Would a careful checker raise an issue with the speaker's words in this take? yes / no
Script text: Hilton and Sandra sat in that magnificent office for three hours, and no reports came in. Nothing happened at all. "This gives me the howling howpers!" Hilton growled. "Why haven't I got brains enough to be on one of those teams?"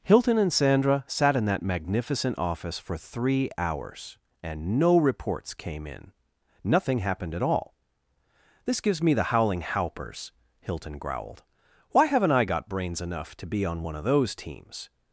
no